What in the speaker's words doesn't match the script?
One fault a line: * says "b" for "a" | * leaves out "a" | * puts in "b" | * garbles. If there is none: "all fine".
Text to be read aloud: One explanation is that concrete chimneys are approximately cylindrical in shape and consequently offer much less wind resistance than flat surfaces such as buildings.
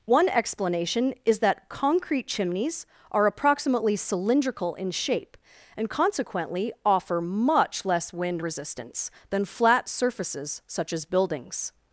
all fine